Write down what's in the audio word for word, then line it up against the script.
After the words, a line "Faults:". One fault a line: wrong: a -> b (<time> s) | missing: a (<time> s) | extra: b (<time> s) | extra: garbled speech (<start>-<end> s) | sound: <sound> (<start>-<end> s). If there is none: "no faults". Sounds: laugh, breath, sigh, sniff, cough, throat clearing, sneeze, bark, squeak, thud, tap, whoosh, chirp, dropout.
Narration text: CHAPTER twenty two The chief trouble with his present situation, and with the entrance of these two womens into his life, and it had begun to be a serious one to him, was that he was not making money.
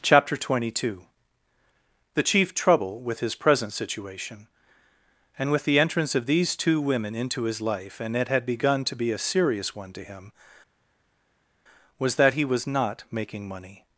CHAPTER twenty two The chief trouble with his present situation, and with the entrance of these two women into his life, and it had begun to be a serious one to him, was that he was not making money.
Faults:
wrong: womens -> women (6.8 s)